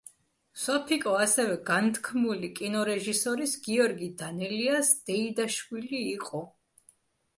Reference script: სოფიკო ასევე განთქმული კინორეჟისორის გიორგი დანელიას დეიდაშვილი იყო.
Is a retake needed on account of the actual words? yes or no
no